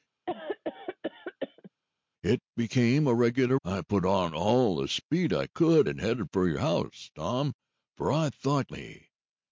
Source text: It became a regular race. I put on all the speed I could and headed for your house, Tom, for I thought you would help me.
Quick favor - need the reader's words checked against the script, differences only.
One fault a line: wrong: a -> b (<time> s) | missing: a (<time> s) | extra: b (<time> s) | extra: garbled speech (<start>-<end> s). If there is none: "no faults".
missing: race (3.6 s)
missing: you would help (8.7 s)